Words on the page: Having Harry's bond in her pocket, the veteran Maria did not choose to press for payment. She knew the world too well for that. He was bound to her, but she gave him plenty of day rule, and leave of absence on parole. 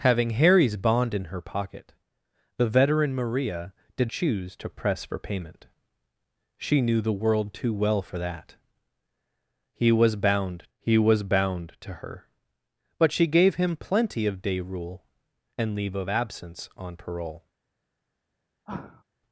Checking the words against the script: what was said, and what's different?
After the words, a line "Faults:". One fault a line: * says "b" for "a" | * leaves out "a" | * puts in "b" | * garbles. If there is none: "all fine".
Having Harry's bond in her pocket, the veteran Maria did choose to press for payment. She knew the world too well for that. He was bound he was bound to her, but she gave him plenty of day rule, and leave of absence on parole.
Faults:
* leaves out "not"
* puts in "he was bound"